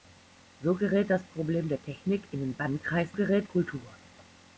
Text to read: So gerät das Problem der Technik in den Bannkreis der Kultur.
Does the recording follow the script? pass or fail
fail